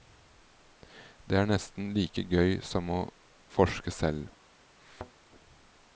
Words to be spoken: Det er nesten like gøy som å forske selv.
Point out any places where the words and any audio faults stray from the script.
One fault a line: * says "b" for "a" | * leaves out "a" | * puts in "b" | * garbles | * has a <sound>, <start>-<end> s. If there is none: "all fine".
* has a thud, 4.8-5.1 s